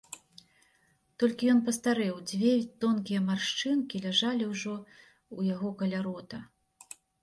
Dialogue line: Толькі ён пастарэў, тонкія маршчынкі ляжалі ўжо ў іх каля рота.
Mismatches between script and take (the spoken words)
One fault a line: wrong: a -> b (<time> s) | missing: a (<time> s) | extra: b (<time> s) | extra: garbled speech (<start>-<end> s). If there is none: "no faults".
extra: дзве (2.3 s)
wrong: іх -> яго (5.5 s)